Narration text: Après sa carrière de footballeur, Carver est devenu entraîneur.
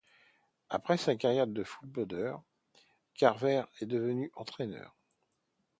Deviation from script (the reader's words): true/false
false